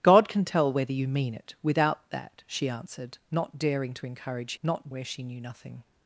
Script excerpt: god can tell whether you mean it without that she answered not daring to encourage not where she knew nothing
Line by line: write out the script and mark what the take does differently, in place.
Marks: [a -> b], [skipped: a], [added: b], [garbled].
god can tell whether you mean it without that she answered not daring to encourage not where she knew nothing